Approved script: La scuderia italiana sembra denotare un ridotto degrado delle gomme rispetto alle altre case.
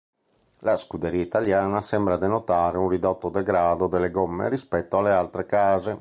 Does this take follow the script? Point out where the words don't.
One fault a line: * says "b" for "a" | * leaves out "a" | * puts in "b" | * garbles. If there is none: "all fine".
all fine